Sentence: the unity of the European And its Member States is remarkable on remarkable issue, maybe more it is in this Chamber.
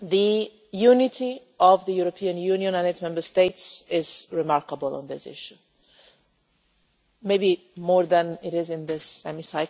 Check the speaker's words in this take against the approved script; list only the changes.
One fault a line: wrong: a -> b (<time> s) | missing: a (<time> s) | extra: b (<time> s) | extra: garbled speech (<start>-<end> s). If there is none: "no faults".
extra: Union (2.4 s)
wrong: remarkable -> this (5.1 s)
extra: than (8.1 s)